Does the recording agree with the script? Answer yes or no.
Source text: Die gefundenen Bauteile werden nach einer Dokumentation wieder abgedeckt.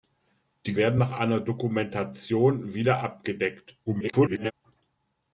no